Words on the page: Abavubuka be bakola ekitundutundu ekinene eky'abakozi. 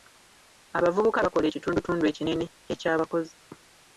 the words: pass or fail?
fail